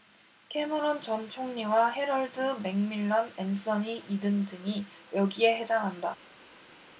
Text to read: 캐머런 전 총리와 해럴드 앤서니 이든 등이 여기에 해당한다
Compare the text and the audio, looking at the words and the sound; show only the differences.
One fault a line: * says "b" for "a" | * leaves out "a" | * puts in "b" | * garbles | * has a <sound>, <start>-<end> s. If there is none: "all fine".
* puts in "맥밀런"